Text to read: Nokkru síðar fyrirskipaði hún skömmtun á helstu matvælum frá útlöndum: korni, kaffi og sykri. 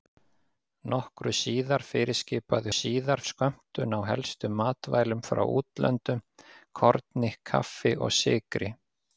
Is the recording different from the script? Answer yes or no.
yes